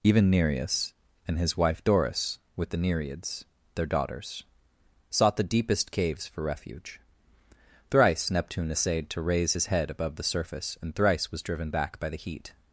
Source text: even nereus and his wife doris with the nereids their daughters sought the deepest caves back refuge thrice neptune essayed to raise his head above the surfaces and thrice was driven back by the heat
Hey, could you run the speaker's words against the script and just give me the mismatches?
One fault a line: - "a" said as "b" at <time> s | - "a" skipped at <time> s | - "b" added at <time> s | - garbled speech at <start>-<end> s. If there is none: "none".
- "back" said as "for" at 6.2 s
- "surfaces" said as "surface" at 10.2 s